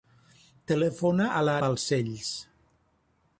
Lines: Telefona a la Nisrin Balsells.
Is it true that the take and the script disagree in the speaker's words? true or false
true